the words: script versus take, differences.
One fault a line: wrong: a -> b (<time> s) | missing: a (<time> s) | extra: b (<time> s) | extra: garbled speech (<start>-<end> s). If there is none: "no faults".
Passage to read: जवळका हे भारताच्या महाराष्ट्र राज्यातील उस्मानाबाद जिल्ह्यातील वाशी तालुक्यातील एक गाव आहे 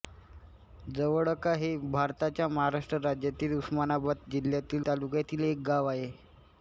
missing: वाशी (4.8 s)